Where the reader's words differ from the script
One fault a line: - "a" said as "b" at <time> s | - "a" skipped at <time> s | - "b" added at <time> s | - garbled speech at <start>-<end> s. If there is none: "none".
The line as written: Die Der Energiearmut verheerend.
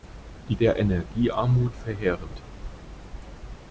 none